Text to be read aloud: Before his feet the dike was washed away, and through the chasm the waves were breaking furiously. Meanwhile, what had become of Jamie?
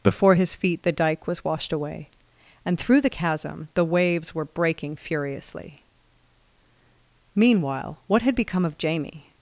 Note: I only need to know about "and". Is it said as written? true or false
true